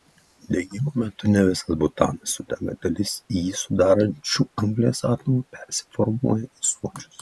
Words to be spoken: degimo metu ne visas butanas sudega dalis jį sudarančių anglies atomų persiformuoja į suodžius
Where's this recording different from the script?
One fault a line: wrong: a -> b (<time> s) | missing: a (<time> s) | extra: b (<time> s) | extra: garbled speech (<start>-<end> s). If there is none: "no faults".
no faults